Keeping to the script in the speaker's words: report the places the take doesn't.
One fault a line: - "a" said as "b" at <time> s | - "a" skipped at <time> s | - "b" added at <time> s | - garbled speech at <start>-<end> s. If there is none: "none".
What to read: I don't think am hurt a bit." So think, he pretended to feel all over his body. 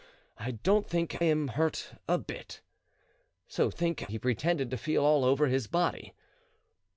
none